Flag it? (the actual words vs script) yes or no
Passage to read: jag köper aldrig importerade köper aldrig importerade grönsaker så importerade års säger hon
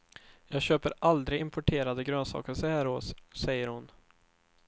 yes